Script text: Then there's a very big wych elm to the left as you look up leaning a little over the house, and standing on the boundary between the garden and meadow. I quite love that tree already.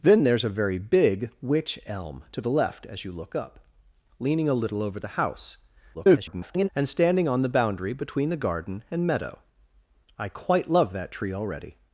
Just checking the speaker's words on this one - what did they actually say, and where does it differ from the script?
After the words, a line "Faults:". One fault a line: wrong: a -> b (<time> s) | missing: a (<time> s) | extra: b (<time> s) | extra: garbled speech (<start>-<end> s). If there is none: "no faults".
Then there's a very big wych elm to the left as you look up leaning a little over the house, [garbled] and standing on the boundary between the garden and meadow. I quite love that tree already.
Faults:
extra: garbled speech (5.9-6.7 s)